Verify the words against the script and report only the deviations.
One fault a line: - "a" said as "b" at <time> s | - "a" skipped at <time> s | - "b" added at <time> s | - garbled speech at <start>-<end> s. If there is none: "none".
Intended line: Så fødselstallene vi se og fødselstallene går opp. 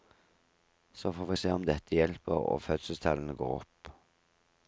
- "fødselstallene" said as "får" at 1.1 s
- "om dette hjelper" added at 1.5 s